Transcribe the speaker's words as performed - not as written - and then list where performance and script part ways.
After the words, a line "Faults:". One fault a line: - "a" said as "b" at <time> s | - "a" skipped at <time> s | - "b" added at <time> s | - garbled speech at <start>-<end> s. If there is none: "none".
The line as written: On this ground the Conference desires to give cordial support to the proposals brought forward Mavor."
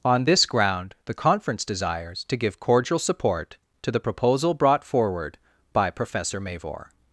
On this ground the Conference desires to give cordial support to the proposal brought forward by Professor Mavor."
Faults:
- "proposals" said as "proposal" at 4.0 s
- "by Professor" added at 5.7 s